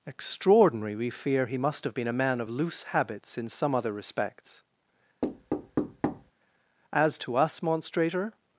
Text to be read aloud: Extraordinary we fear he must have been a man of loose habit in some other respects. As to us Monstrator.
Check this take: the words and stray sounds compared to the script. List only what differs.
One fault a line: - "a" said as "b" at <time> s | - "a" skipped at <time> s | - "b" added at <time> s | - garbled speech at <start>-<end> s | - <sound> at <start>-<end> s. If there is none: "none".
- "habit" said as "habits" at 2.9 s
- thud at 5.2-6.3 s